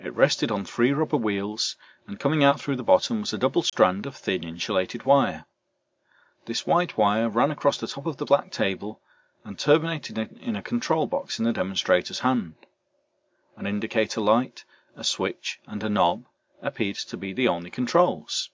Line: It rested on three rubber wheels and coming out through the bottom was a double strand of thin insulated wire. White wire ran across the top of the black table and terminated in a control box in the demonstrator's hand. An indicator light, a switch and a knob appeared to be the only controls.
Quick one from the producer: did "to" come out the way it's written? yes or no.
yes